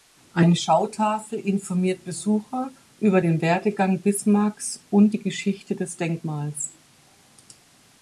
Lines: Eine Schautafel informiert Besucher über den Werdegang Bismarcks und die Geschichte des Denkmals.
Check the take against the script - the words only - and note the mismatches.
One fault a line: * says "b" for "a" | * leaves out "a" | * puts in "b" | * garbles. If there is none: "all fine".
all fine